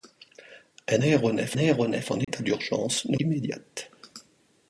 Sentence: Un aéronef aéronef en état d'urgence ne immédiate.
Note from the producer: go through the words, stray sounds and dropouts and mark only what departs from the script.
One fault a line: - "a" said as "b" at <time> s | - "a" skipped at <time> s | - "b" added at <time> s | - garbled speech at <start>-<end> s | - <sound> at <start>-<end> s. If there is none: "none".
- dropout at 2.2-2.3 s